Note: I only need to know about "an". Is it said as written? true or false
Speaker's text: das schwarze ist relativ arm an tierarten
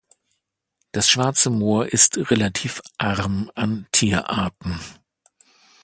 true